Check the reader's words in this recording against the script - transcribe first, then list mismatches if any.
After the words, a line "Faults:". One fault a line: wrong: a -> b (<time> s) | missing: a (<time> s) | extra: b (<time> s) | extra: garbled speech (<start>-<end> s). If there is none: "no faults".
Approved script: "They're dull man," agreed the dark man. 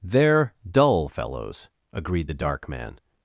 "They're dull fellows," agreed the dark man.
Faults:
wrong: man -> fellows (1.1 s)